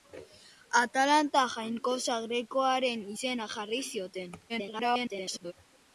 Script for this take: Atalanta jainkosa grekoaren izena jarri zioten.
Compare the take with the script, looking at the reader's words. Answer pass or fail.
fail